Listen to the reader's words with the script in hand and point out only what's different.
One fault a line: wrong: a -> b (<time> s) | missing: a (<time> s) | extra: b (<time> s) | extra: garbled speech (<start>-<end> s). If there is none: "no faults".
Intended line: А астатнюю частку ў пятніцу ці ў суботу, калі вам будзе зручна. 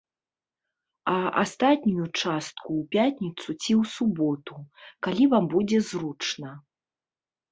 no faults